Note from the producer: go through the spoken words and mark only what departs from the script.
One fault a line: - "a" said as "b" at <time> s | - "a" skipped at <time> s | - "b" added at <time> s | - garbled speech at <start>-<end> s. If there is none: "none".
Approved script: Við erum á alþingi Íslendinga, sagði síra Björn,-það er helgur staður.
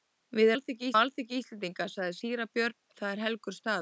- "erum" said as "alþingi" at 0.5 s